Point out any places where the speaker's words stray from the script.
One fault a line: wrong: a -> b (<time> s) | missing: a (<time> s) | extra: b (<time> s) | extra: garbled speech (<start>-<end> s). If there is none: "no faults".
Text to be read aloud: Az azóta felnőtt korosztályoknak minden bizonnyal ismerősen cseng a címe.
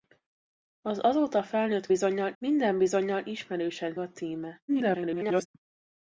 wrong: korosztályoknak -> bizonnyal (1.9 s)
missing: cseng (4.0 s)
extra: garbled speech (4.7-5.5 s)